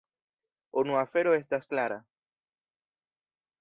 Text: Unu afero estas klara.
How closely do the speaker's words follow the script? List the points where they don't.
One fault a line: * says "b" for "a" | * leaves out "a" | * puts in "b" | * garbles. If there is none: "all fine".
all fine